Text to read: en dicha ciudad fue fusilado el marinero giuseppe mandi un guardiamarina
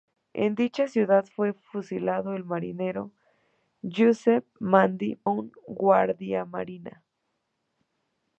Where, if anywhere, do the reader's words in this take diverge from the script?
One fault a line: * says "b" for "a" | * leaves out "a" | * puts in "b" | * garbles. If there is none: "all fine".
all fine